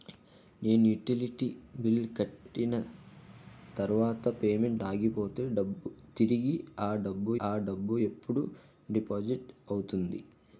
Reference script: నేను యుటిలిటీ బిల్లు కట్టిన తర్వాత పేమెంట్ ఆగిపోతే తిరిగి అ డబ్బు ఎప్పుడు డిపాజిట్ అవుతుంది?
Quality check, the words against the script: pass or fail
fail